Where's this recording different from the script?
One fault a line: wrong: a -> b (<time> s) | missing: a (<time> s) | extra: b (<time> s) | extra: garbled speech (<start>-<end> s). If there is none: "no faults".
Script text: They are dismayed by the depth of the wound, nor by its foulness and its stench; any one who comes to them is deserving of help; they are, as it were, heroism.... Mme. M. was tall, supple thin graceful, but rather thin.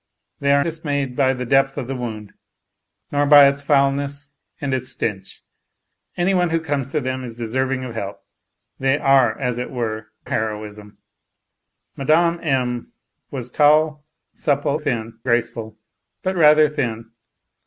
no faults